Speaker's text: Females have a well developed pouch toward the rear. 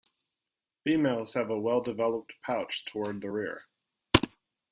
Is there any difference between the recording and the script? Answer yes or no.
no